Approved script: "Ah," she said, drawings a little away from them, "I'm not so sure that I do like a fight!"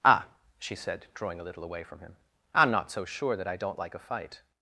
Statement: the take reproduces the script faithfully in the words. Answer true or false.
false